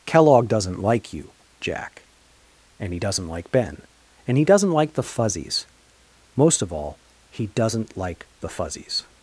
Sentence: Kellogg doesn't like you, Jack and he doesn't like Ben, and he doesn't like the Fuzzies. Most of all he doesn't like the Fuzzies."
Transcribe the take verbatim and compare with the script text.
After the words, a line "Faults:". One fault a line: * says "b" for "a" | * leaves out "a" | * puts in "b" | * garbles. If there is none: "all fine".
Kellogg doesn't like you, Jack and he doesn't like Ben, and he doesn't like the Fuzzies. Most of all he doesn't like the Fuzzies."
Faults:
all fine